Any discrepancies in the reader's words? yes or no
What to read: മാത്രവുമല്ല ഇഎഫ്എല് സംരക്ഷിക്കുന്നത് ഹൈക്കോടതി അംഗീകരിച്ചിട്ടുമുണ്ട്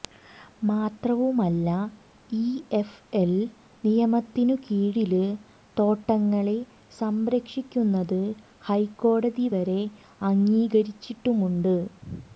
yes